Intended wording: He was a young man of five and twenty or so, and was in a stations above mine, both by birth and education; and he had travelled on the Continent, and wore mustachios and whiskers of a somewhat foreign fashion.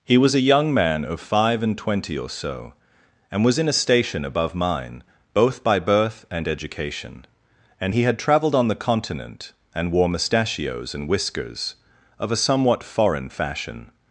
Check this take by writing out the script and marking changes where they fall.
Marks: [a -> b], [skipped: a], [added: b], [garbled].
He was a young man of five and twenty or so, and was in a [stations -> station] above mine, both by birth and education; and he had travelled on the Continent, and wore mustachios and whiskers of a somewhat foreign fashion.